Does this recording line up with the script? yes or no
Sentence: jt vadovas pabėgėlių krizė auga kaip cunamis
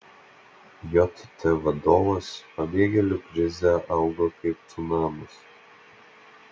yes